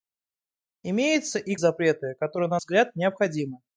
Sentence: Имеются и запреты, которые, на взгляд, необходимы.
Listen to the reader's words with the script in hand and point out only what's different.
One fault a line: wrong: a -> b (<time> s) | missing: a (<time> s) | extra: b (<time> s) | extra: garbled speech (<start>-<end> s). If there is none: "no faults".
no faults